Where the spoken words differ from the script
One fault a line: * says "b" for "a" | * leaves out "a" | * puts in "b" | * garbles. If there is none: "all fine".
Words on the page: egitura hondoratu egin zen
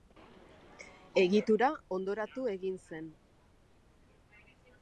all fine